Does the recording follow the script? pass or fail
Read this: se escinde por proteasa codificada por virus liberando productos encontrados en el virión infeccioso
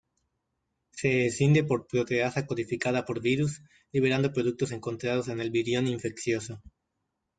pass